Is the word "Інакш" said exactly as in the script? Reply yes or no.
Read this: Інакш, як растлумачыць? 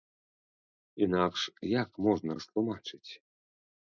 yes